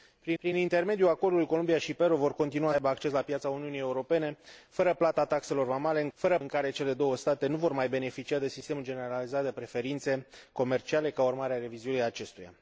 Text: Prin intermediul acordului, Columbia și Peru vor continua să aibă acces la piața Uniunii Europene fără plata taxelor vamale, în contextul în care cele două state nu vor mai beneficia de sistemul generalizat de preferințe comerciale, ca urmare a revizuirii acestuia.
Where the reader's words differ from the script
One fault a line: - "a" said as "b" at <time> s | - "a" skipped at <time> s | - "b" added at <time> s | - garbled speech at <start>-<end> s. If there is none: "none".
- "prin" added at 0.4 s
- "contextul" said as "fără" at 6.1 s